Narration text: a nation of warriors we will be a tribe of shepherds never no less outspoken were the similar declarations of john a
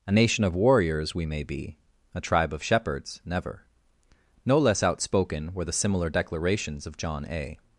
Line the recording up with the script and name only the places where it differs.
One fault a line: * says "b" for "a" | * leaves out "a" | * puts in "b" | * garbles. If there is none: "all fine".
* says "may" for "will"